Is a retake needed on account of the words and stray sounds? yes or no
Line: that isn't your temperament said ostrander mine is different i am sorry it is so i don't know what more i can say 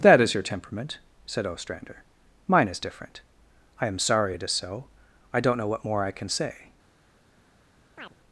yes